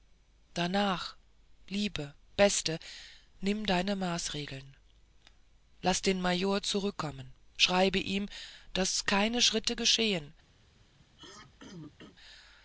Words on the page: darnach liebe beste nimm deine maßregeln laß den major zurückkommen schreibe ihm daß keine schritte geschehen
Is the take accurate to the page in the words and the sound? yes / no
no